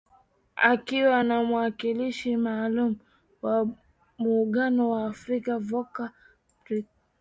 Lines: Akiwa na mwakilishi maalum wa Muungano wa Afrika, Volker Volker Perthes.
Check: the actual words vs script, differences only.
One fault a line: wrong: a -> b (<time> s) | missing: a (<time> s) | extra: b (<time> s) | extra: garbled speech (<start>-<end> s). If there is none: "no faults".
missing: Volker (6.1 s)